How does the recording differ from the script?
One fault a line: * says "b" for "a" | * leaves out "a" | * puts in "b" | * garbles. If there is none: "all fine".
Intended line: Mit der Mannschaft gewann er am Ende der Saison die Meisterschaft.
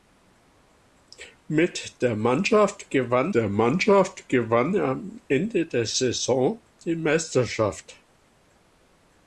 * puts in "der Mannschaft gewann"